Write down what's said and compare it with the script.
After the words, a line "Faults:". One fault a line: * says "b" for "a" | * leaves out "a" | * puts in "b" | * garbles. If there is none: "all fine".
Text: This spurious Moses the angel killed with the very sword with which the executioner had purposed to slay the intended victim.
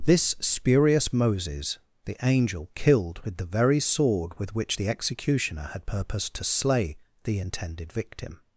This spurious Moses the angel killed with the very sword with which the executioner had purposed to slay the intended victim.
Faults:
all fine